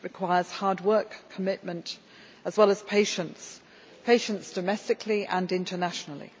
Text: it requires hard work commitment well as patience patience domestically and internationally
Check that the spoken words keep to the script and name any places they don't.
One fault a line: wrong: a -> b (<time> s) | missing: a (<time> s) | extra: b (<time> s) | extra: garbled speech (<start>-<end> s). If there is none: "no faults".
extra: as (2.5 s)